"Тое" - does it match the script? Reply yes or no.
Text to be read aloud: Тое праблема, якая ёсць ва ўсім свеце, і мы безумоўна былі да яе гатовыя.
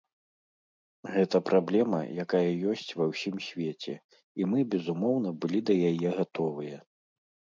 no